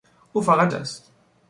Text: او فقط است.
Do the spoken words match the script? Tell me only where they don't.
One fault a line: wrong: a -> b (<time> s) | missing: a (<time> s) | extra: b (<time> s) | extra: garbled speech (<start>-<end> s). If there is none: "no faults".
no faults